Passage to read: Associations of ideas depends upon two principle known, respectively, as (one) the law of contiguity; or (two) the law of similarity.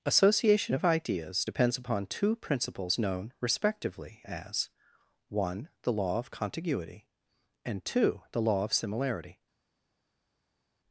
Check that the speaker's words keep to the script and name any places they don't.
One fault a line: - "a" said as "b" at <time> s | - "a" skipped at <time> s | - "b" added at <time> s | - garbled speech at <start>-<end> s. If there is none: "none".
- "Associations" said as "Association" at 0.0 s
- "principle" said as "principles" at 2.4 s
- "or" said as "and" at 7.6 s